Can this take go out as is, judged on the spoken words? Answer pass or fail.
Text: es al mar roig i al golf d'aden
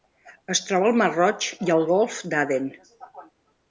fail